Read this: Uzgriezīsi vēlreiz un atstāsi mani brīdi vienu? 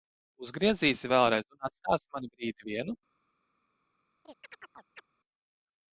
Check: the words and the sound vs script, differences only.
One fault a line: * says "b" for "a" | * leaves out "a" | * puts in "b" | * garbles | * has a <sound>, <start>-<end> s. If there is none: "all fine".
* has a chirp, 4.2-5.1 s